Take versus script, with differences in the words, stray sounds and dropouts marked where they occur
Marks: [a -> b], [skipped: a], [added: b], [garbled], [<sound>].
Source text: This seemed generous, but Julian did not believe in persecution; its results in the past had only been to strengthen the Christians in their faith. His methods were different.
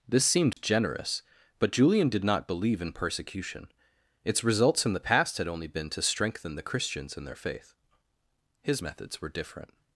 This seemed [dropout] generous, but Julian did not believe in persecution; its results in the past had only been to strengthen the Christians in their faith. His methods were different.